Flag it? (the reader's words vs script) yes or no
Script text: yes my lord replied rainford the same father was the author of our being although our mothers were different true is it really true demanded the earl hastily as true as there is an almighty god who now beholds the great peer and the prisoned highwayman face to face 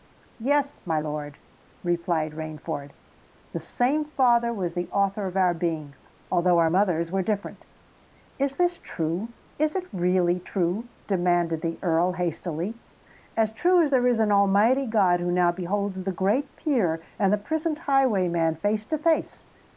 yes